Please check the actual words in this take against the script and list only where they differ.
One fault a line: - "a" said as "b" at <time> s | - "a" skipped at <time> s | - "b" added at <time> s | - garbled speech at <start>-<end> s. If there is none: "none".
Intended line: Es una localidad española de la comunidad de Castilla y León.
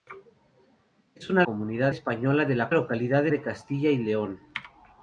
- "localidad" said as "comunidad" at 1.4 s
- "comunidad" said as "localidad" at 2.7 s